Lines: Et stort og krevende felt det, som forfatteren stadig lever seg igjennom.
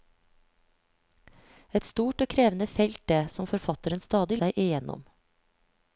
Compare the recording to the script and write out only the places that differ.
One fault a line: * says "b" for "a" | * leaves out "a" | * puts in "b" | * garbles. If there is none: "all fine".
* leaves out "lever"